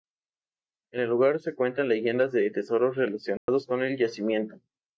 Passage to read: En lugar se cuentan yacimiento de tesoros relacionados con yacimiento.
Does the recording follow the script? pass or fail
fail